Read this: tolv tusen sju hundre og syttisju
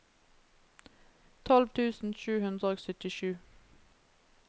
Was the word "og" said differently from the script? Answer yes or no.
no